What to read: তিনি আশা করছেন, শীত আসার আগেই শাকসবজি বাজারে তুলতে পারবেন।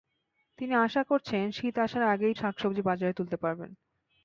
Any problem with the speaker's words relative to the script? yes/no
no